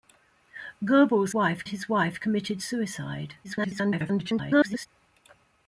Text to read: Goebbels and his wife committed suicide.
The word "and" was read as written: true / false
false